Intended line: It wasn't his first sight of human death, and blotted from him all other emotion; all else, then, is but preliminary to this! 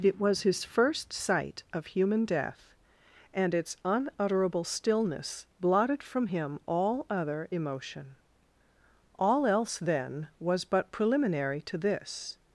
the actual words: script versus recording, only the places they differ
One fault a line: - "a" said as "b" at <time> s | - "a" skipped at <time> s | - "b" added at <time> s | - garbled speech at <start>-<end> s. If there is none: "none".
- "wasn't" said as "was" at 0.2 s
- "its unutterable stillness" added at 3.5 s
- "is" said as "was" at 10.4 s